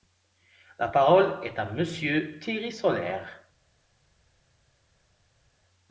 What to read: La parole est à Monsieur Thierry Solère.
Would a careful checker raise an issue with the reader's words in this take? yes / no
no